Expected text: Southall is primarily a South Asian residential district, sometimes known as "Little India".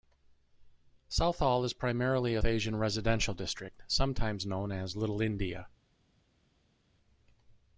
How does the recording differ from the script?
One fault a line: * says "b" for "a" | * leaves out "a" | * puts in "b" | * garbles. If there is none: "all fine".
* leaves out "South"